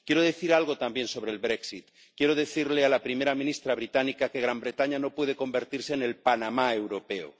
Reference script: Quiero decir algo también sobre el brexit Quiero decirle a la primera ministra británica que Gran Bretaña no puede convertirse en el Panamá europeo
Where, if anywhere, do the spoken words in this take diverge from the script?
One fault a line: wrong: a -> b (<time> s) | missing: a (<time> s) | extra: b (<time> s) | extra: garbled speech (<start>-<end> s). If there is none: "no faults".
no faults